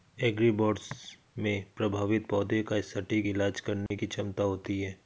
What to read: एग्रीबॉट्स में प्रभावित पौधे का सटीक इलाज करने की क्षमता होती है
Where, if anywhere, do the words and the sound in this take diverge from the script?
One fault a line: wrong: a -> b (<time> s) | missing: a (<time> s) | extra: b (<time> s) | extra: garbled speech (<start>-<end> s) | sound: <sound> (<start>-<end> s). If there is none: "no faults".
sound: dropout (3.9-3.9 s)